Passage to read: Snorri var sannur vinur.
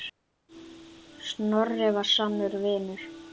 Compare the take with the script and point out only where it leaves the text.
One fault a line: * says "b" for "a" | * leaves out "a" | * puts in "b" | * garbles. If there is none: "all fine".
all fine